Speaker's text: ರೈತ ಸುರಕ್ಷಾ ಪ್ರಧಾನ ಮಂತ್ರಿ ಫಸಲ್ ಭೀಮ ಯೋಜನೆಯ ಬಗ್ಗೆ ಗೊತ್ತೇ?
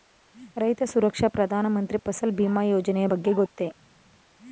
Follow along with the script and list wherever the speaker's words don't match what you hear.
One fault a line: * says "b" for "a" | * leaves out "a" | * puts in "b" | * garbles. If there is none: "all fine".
all fine